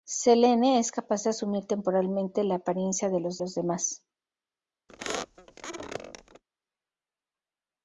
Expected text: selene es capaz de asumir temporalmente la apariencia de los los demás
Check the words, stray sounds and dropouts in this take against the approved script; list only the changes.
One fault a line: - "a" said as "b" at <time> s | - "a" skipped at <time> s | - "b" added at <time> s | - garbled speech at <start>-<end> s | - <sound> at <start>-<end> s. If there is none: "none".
- squeak at 4.9-6.4 s